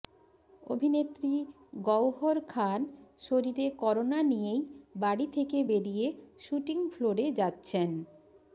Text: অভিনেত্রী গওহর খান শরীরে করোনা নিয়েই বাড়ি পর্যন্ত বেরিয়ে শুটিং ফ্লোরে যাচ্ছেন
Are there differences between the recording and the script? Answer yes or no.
yes